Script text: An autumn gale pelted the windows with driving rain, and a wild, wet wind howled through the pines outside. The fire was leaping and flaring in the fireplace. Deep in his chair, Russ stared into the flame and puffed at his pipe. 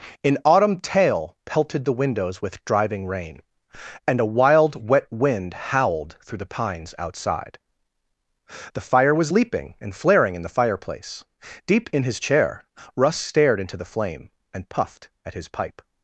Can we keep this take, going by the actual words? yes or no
no